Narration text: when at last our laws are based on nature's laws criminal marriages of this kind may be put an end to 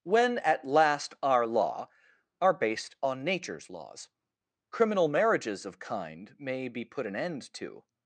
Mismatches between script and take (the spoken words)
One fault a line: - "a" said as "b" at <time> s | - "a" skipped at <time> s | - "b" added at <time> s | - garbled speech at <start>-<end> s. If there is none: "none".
- "laws" said as "law" at 1.4 s
- "this" skipped at 5.8 s